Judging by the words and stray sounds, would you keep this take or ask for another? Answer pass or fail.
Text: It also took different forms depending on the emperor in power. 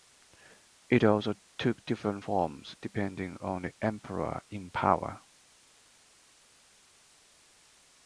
pass